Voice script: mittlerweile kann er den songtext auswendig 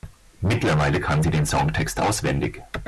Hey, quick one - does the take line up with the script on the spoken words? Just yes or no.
no